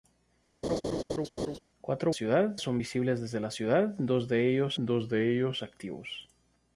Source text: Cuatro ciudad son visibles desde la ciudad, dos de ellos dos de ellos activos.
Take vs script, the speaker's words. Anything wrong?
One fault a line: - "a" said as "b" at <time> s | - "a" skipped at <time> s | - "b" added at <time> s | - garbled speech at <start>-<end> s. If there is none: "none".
none